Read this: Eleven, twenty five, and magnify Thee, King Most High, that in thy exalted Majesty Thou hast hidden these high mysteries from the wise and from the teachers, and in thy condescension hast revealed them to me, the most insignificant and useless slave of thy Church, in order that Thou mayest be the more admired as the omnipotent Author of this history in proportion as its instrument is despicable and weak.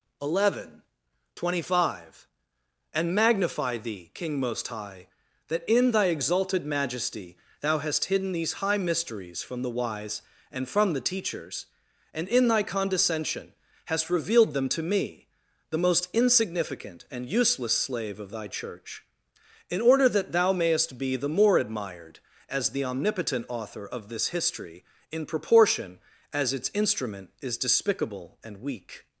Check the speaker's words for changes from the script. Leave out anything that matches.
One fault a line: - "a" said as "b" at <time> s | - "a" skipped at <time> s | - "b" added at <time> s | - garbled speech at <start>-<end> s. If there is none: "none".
none